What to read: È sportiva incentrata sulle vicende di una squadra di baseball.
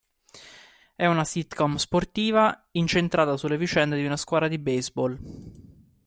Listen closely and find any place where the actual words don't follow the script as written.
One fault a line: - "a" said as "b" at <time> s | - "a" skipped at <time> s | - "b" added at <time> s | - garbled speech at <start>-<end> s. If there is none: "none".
- "una sitcom" added at 1.1 s